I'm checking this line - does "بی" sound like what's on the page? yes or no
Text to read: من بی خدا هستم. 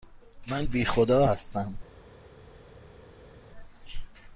yes